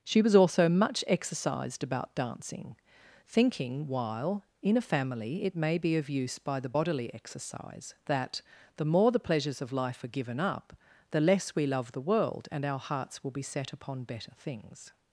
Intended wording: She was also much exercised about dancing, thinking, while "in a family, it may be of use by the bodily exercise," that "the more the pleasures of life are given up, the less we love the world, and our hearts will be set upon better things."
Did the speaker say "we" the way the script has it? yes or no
yes